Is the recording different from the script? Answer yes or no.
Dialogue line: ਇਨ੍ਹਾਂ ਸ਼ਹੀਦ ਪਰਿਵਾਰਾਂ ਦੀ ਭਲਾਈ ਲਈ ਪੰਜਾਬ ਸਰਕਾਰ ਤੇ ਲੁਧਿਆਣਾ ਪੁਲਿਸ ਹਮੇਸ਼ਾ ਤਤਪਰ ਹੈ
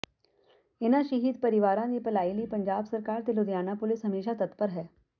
no